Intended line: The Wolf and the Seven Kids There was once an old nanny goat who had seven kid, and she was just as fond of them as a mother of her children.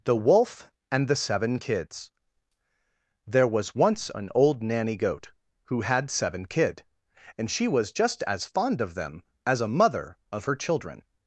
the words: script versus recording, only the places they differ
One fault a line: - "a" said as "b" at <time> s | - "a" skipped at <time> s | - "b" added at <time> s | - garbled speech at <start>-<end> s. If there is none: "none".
none